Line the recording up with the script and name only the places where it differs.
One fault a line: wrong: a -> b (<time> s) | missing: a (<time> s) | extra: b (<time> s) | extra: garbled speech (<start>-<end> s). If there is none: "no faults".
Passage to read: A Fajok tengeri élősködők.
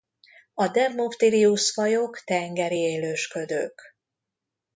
extra: Dermophthirius (0.7 s)